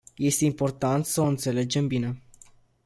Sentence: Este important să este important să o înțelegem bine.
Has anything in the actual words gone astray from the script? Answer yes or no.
yes